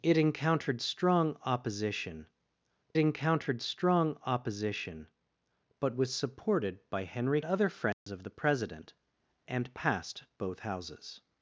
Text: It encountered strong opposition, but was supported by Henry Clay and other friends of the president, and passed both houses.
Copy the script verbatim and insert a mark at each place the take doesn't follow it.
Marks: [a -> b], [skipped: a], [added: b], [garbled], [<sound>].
It encountered strong opposition, [added: encountered strong opposition] but was supported by Henry [skipped: Clay and] other friends [dropout] of the president, and passed both houses.